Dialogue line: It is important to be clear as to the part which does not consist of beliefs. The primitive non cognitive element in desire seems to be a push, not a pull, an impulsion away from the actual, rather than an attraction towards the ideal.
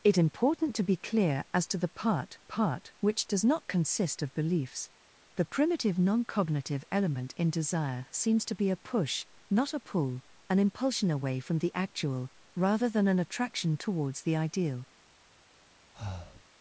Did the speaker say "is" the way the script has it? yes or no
no